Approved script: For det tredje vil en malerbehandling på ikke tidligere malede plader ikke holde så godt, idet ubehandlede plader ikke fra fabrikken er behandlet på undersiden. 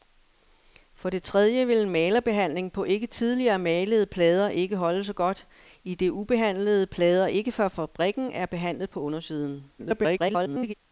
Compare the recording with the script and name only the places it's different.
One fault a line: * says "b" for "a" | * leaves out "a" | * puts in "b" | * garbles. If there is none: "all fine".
* garbles